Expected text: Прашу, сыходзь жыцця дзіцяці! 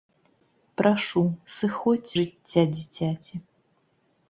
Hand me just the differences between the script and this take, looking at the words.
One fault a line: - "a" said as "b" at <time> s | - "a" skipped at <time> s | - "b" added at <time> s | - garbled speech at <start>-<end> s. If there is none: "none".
none